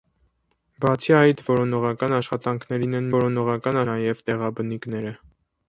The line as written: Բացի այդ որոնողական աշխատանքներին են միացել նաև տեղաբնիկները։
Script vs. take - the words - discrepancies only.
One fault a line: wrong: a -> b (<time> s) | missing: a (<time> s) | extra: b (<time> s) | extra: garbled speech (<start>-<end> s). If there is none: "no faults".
wrong: միացել -> որոնողական (3.1 s)